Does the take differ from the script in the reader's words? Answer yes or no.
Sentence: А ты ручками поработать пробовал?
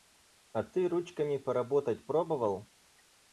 no